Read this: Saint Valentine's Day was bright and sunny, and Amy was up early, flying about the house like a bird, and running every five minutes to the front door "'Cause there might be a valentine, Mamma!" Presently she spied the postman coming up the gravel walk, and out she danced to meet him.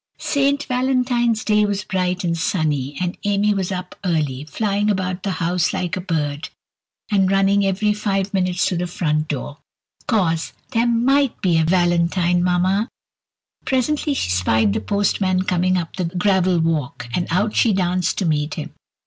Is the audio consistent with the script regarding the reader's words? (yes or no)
yes